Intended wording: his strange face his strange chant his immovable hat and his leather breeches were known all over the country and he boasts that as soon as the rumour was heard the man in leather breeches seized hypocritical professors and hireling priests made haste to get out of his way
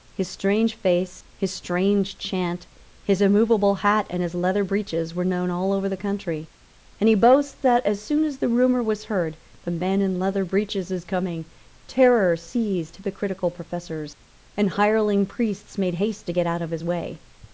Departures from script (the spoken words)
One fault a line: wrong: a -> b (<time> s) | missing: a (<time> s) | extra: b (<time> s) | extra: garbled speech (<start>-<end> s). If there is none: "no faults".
extra: is coming terror (10.9 s)